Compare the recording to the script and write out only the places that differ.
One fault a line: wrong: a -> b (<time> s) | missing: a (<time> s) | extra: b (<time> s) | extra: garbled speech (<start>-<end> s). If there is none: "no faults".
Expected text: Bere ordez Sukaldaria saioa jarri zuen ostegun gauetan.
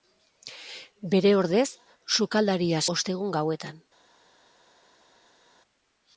missing: saioa jarri zuen (2.8 s)